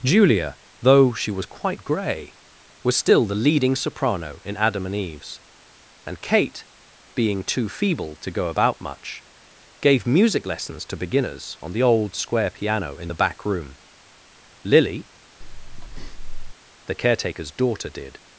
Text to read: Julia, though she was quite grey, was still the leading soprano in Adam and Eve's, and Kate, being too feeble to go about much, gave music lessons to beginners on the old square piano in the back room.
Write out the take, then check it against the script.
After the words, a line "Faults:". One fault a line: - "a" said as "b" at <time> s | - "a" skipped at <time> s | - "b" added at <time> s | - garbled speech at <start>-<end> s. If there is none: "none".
Julia, though she was quite grey, was still the leading soprano in Adam and Eve's, and Kate, being too feeble to go about much, gave music lessons to beginners on the old square piano in the back room. Lily, the caretaker's daughter, did
Faults:
- "Lily the caretaker's daughter did" added at 14.6 s